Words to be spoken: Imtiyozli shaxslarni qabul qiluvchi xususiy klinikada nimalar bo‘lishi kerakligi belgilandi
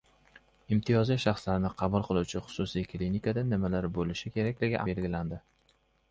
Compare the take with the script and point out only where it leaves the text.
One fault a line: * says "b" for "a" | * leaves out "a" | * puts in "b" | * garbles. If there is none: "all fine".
all fine